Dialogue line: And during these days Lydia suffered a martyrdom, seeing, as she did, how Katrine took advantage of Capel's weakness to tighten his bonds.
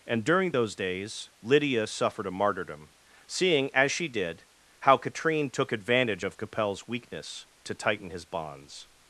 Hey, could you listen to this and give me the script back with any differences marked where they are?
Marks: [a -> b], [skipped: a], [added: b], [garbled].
And during [these -> those] days Lydia suffered a martyrdom, seeing, as she did, how Katrine took advantage of Capel's weakness to tighten his bonds.